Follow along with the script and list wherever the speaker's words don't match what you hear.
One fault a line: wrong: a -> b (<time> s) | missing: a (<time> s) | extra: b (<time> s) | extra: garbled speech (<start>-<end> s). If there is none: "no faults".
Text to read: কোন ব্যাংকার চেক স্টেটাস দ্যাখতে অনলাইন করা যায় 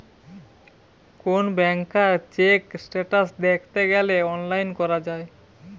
extra: গ্যালে (3.9 s)